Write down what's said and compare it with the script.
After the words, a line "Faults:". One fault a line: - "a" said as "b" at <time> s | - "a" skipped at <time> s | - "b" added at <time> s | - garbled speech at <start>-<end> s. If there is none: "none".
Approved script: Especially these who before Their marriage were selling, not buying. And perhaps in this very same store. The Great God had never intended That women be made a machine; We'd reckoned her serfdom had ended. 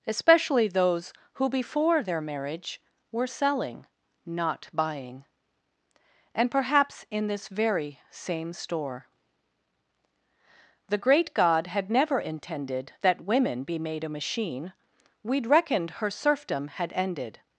Especially those who before Their marriage were selling, not buying. And perhaps in this very same store. The Great God had never intended That women be made a machine; We'd reckoned her serfdom had ended.
Faults:
- "these" said as "those" at 0.7 s